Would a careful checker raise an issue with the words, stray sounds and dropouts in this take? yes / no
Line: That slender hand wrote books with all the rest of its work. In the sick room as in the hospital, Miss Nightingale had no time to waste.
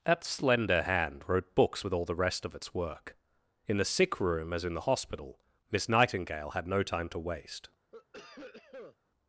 yes